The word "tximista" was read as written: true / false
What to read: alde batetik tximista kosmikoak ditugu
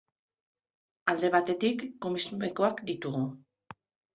false